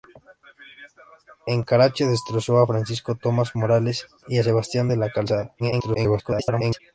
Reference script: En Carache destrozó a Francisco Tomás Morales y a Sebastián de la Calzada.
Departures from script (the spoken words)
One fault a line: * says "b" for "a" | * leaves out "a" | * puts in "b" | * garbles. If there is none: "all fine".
* garbles